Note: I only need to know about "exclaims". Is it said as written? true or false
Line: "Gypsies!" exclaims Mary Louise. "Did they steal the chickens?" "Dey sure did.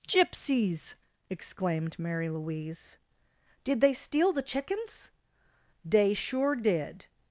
false